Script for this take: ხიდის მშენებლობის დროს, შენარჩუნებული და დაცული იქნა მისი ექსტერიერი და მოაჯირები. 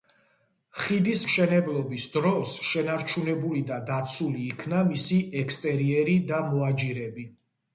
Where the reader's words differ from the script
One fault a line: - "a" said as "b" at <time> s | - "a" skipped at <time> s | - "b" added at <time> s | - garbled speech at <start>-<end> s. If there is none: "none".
none